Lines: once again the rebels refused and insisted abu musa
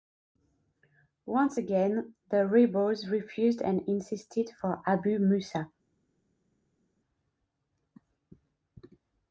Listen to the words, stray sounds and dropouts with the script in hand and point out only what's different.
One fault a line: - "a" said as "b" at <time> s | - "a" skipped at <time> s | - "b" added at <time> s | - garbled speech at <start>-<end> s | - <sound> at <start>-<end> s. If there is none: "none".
- "for" added at 4.6 s